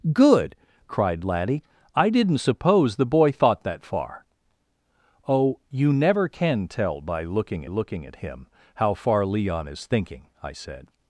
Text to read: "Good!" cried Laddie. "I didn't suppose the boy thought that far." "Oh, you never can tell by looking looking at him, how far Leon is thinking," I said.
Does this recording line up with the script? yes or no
yes